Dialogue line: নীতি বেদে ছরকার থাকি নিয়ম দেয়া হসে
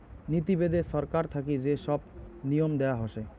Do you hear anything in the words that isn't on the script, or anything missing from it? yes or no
yes